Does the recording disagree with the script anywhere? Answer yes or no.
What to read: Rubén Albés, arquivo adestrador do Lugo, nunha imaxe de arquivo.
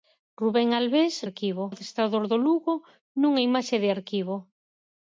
no